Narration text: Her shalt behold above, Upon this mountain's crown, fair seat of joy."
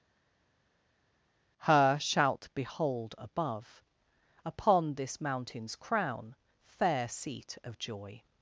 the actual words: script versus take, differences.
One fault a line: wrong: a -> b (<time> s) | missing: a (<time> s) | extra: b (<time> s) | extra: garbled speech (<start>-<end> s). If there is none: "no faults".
no faults